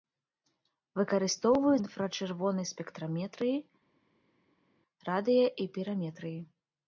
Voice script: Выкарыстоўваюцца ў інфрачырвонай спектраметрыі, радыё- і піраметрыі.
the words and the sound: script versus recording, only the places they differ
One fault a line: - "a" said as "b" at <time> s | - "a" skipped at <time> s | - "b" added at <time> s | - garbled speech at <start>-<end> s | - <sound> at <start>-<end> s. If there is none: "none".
- "ў" skipped at 1.8 s